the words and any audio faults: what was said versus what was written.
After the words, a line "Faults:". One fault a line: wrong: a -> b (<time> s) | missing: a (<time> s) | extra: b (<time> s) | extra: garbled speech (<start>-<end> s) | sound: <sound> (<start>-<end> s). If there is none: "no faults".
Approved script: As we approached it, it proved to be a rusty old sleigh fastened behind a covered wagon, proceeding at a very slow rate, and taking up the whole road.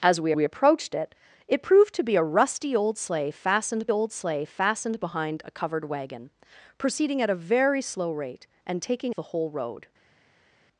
As we we approached it, it proved to be a rusty old sleigh fastened old sleigh fastened behind a covered wagon, proceeding at a very slow rate, and taking the whole road.
Faults:
extra: we (0.3 s)
extra: old sleigh fastened (3.9 s)
missing: up (9.1 s)